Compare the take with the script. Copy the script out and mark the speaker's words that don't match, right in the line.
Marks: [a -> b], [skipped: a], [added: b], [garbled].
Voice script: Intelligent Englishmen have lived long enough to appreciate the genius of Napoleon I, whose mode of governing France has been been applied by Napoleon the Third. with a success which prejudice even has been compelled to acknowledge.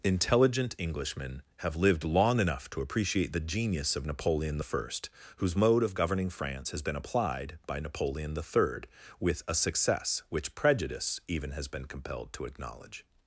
Intelligent Englishmen have lived long enough to appreciate the genius of Napoleon I, whose mode of governing France has been [skipped: been] applied by Napoleon the Third. with a success which prejudice even has been compelled to acknowledge.